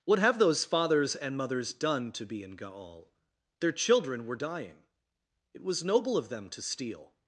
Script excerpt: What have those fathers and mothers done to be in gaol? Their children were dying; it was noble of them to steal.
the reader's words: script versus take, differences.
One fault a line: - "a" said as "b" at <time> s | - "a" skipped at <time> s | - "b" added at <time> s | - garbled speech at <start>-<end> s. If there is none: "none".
none